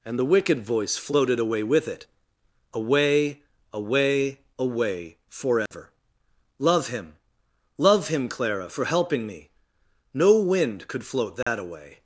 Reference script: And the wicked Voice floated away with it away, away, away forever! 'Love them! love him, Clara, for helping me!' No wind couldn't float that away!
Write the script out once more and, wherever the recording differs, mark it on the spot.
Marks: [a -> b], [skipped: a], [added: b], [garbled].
And the wicked Voice floated away with it away, away, away forever! 'Love [them! -> him] love him, Clara, for helping me!' No wind [couldn't -> could] float that away!